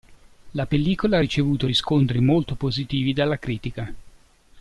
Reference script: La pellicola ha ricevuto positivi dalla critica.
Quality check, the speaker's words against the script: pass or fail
fail